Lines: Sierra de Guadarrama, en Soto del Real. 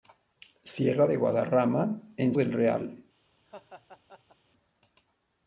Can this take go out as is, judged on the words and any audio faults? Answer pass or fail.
fail